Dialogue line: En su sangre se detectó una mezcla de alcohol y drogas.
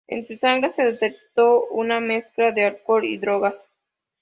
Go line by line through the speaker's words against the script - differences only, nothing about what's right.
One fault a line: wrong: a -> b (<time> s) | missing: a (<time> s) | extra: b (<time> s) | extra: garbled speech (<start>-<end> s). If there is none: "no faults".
no faults